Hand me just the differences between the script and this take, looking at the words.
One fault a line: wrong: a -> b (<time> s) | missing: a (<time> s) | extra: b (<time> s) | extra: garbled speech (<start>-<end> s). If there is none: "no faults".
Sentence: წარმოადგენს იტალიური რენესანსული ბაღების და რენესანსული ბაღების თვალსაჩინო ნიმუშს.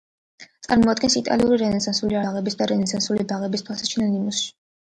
no faults